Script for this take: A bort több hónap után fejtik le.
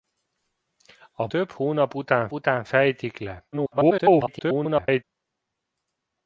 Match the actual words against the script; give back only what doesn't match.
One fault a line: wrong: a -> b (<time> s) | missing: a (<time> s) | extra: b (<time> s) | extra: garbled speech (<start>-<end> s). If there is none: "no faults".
missing: bort (1.3 s)
extra: után (2.3 s)
extra: garbled speech (3.5-5.0 s)